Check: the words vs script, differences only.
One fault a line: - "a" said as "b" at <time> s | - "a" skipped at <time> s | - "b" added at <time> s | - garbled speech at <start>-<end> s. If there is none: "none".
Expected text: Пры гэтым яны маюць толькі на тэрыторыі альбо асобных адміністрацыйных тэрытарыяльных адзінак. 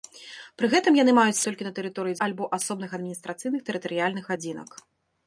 none